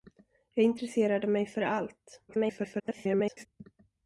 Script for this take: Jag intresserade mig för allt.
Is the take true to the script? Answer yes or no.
no